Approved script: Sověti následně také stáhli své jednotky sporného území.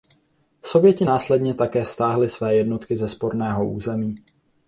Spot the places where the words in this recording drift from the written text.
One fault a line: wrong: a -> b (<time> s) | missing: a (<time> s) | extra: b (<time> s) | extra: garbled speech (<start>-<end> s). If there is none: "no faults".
extra: ze (3.0 s)